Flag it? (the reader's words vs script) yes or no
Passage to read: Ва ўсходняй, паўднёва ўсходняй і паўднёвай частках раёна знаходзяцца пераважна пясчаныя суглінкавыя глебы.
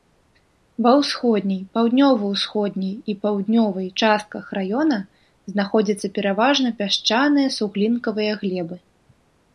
no